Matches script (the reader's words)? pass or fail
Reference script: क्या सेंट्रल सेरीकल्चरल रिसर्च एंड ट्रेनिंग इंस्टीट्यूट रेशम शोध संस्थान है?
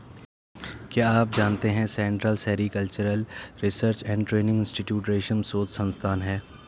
fail